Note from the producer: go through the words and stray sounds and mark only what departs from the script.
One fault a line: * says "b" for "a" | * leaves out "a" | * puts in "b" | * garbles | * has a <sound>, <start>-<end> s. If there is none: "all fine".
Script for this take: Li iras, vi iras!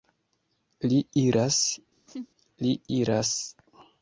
* has a laugh, 2.1-2.3 s
* says "li" for "vi"